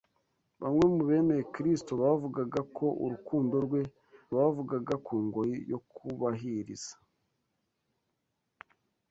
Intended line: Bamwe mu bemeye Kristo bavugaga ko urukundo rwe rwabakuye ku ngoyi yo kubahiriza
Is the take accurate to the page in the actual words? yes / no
no